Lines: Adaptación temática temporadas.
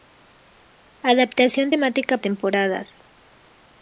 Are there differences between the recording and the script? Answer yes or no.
no